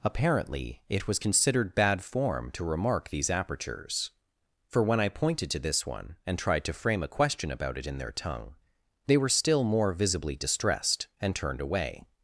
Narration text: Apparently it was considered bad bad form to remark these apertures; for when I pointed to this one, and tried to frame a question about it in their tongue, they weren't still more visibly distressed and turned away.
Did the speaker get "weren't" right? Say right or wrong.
wrong